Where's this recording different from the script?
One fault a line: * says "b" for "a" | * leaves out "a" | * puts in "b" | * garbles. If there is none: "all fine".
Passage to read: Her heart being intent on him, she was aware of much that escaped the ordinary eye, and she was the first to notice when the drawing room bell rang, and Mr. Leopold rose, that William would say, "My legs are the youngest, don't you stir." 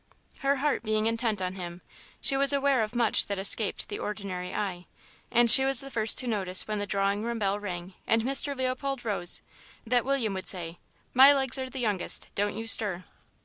all fine